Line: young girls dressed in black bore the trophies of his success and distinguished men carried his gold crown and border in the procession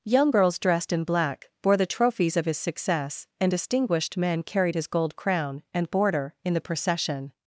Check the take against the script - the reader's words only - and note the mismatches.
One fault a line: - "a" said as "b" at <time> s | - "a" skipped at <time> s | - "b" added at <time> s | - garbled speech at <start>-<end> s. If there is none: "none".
none